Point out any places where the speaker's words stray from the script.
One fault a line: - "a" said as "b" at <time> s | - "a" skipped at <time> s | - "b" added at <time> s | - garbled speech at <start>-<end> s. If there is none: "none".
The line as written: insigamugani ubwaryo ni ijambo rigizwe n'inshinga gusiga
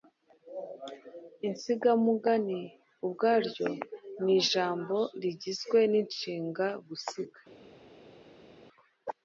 none